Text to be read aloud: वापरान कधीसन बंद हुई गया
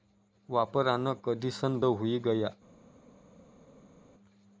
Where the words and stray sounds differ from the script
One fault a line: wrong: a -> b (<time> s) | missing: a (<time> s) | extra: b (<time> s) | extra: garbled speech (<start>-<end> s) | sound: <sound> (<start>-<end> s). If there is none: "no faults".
missing: बंद (1.8 s)